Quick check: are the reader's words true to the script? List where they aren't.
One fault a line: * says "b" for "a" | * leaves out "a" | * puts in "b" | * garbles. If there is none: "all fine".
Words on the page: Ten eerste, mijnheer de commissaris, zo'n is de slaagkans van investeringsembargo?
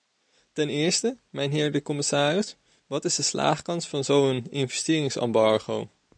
* says "wat" for "zo'n"
* puts in "zo'n"